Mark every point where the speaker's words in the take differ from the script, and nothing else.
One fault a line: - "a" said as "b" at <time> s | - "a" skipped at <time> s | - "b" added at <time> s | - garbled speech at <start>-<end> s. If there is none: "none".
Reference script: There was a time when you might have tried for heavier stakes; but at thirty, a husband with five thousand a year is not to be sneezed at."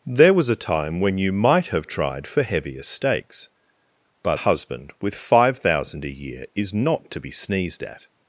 - "at thirty a" skipped at 4.4 s